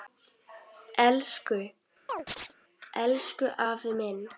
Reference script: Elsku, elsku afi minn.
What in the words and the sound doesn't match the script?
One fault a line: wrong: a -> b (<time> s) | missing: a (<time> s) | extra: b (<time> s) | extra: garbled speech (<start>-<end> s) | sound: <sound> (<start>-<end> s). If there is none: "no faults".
sound: chirp (2.1-2.5 s)